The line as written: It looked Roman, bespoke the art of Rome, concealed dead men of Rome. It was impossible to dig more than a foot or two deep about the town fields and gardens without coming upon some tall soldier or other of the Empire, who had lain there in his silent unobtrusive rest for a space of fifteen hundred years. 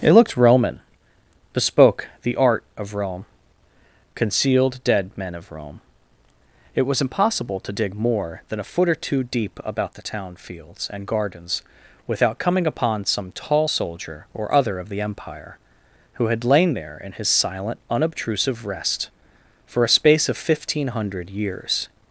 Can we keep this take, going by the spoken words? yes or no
yes